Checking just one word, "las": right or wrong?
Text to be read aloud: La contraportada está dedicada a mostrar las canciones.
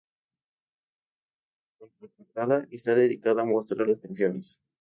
right